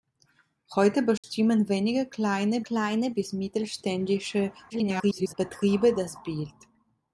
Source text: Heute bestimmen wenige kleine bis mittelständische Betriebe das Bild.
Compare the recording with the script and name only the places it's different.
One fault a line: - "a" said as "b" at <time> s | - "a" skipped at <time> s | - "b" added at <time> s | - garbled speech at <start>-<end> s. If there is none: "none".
- "kleine" added at 2.6 s
- garbled speech at 4.7-5.3 s